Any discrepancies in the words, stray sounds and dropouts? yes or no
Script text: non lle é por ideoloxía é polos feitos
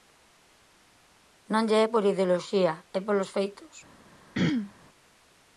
yes